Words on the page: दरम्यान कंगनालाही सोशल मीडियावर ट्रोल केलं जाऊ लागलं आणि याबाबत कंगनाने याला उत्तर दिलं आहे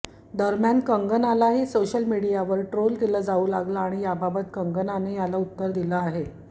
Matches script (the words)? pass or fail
pass